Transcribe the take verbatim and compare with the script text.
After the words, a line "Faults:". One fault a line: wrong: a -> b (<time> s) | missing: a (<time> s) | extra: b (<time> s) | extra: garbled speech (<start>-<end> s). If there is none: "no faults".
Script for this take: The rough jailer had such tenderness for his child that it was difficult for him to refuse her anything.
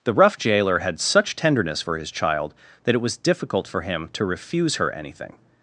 The rough jailer had such tenderness for his child that it was difficult for him to refuse her anything.
Faults:
no faults